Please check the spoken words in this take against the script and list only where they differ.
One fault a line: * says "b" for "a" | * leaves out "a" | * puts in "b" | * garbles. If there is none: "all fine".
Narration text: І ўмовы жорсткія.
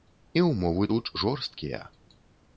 * puts in "тут"